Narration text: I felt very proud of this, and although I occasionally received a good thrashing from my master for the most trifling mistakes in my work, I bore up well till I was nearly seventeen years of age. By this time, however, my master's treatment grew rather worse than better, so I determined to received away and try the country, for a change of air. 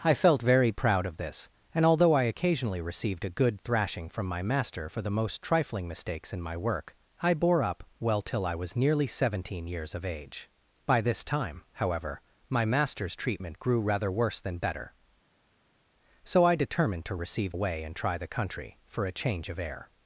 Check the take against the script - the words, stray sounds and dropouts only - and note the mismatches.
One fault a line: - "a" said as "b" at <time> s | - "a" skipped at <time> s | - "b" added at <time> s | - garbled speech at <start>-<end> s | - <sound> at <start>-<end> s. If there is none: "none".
none